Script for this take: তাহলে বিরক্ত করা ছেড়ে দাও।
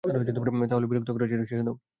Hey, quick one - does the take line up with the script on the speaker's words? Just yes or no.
yes